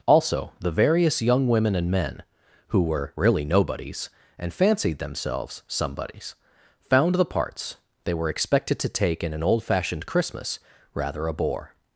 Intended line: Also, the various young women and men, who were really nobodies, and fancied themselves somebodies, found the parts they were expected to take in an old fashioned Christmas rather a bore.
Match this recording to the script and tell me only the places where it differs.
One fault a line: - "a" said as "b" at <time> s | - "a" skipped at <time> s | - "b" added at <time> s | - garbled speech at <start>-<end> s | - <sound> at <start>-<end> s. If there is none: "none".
none